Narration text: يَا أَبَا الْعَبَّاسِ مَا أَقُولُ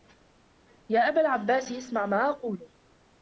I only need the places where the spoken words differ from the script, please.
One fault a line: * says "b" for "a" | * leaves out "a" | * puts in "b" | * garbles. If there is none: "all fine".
* puts in "اسْمَعْ"